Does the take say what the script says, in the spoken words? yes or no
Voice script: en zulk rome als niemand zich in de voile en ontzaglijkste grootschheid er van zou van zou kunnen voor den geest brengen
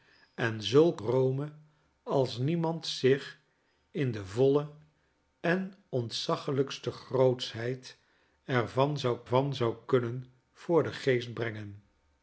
yes